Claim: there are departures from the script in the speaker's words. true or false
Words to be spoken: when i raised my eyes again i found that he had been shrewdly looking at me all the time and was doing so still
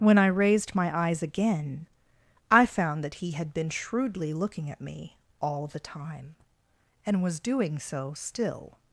false